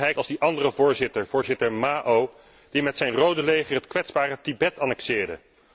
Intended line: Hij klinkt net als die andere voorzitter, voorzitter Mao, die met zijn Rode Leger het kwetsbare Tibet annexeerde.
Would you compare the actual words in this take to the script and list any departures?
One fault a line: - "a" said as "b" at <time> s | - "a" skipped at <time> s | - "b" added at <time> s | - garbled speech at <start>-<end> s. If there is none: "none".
- "klinkt net" skipped at 0.1 s